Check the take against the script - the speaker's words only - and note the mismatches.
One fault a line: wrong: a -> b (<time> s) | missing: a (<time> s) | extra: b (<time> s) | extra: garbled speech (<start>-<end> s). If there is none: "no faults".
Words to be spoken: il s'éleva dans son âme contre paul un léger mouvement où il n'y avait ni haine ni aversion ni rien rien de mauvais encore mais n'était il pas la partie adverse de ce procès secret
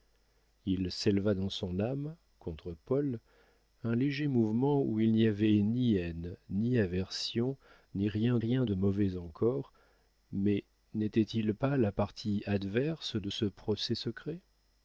no faults